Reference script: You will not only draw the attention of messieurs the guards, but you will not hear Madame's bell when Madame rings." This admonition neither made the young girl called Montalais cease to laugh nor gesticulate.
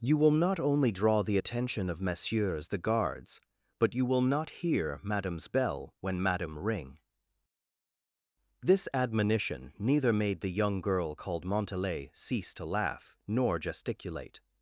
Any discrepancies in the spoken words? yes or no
yes